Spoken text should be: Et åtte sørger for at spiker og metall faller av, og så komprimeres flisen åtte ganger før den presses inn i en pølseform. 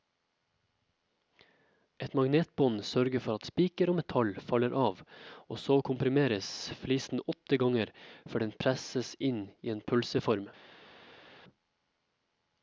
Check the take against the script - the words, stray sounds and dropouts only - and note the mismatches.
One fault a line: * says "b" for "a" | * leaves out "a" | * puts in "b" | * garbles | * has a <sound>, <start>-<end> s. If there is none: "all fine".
* says "magnetbånd" for "åtte"